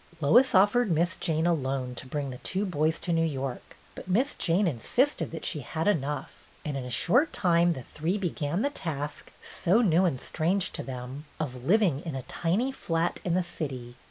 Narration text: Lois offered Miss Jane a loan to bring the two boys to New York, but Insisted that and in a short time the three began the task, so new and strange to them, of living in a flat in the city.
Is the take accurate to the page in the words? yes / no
no